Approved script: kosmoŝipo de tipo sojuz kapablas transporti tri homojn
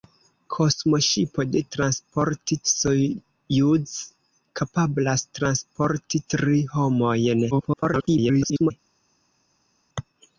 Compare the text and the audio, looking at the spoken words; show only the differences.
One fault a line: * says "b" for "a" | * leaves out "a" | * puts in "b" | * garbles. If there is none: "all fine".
* says "transporti" for "tipo"
* garbles